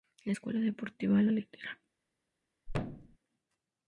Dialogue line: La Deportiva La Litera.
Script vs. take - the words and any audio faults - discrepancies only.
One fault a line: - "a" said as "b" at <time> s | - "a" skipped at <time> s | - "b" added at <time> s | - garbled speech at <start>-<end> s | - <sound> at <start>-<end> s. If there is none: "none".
- "Escuela" added at 0.3 s
- thud at 2.7-3.2 s